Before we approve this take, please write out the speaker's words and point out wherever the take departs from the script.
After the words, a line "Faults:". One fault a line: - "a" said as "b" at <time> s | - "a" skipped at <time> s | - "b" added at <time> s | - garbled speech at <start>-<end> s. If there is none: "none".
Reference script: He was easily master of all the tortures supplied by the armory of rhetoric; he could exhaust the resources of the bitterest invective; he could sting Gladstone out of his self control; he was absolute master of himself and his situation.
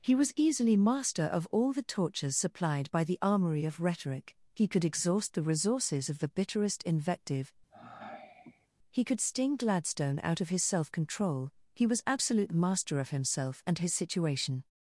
He was easily master of all the tortures supplied by the armory of rhetoric; he could exhaust the resources of the bitterest invective; he could sting Gladstone out of his self control; he was absolute master of himself and his situation.
Faults:
none